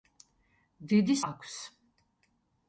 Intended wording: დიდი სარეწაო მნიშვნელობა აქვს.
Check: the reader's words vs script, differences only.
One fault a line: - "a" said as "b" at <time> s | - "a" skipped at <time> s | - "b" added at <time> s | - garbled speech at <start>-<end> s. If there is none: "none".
- "სარეწაო მნიშვნელობა" skipped at 1.2 s